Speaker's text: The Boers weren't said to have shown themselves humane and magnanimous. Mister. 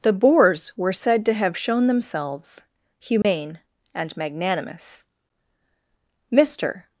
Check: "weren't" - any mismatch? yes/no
yes